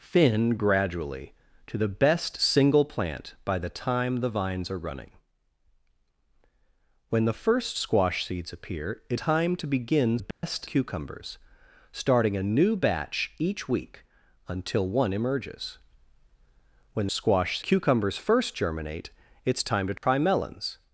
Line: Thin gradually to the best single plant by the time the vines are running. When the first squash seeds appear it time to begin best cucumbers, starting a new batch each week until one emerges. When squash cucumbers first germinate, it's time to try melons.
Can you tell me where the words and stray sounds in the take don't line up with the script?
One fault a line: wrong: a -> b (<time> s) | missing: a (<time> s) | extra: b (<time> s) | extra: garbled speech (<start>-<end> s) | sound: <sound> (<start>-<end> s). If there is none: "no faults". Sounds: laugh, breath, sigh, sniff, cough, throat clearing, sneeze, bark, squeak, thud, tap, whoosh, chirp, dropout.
sound: dropout (10.3-10.4 s)
sound: dropout (20.0-20.0 s)